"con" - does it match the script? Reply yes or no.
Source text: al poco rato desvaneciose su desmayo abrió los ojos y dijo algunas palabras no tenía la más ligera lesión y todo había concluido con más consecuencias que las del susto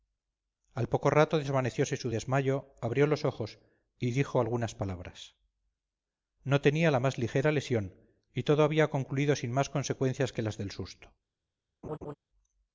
no